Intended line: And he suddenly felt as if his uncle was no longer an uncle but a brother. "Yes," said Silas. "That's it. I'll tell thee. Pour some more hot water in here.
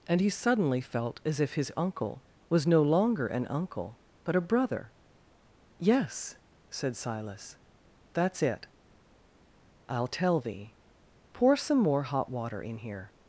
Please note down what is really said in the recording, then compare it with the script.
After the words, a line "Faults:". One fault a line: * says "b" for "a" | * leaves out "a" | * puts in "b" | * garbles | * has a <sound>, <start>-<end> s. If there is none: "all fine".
And he suddenly felt as if his uncle was no longer an uncle but a brother. "Yes," said Silas. "That's it. I'll tell thee. Pour some more hot water in here.
Faults:
all fine